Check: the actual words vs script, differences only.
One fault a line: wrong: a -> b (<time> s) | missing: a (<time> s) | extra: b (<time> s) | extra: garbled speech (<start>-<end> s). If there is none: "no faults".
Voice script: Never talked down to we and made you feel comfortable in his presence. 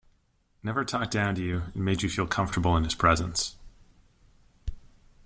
wrong: we -> you (1.4 s)